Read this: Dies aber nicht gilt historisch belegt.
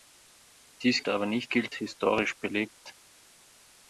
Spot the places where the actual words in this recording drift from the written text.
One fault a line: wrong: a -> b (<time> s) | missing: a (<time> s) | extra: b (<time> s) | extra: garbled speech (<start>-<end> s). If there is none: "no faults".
no faults